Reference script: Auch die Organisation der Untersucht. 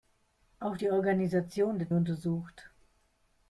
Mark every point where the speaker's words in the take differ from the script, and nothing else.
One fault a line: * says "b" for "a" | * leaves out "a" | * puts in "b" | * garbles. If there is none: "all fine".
all fine